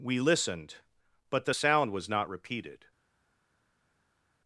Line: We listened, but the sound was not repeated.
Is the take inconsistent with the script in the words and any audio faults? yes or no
no